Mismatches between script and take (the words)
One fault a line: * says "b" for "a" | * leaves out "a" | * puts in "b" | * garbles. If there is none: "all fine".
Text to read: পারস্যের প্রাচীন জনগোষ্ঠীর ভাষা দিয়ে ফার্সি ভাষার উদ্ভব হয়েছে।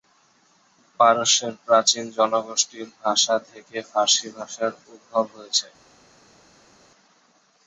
* says "থেকে" for "দিয়ে"